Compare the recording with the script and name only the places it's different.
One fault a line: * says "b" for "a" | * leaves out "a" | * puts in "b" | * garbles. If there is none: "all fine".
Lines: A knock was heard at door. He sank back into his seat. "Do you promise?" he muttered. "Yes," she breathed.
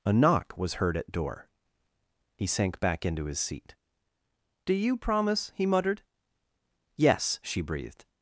all fine